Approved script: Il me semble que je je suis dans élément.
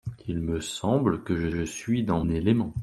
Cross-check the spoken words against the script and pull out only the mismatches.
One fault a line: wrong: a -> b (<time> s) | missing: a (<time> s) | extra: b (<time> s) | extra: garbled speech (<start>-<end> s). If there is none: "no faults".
no faults